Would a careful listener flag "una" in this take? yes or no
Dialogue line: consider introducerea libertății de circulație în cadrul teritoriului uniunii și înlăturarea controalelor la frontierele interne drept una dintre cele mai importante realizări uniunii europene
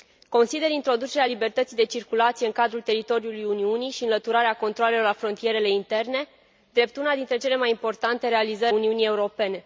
no